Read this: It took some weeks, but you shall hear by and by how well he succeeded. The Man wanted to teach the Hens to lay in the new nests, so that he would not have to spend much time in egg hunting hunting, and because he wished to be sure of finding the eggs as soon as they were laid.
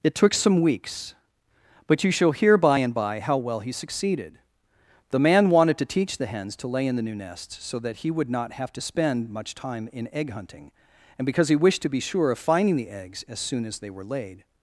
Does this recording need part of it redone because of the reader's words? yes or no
yes